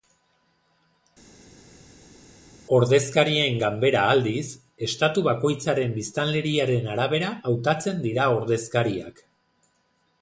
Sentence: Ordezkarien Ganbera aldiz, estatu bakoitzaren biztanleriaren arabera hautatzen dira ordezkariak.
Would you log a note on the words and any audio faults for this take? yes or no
no